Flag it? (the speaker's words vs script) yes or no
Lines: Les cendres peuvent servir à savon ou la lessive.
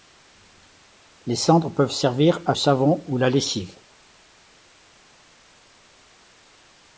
no